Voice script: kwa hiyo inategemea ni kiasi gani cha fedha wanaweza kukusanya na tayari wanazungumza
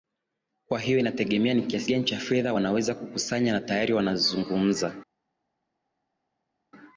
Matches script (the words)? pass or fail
pass